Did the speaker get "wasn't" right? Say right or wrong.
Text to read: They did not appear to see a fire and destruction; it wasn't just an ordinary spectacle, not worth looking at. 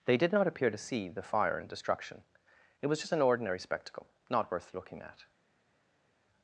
wrong